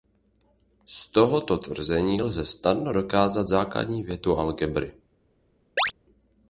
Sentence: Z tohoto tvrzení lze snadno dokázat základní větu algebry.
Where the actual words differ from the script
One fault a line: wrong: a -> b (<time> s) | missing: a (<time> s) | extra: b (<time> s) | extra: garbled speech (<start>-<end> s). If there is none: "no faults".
no faults